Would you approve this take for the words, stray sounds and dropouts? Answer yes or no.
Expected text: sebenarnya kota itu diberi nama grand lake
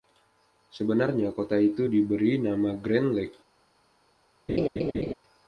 no